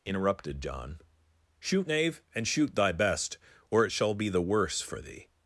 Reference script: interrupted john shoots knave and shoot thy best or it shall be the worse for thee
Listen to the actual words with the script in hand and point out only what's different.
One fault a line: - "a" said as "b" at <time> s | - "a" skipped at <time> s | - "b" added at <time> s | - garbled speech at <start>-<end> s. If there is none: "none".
- "shoots" said as "shoot" at 1.6 s